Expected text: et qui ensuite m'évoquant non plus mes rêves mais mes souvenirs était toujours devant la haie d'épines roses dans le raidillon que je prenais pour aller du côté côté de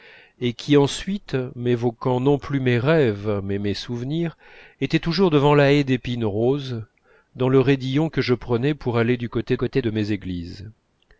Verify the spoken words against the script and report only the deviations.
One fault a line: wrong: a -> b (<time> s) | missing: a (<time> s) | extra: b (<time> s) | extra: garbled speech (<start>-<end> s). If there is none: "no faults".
no faults